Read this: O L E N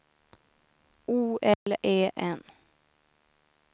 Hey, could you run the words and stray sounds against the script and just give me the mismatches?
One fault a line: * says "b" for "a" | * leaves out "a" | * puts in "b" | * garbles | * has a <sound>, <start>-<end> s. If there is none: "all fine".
* has a dropout, 1.5-1.7 s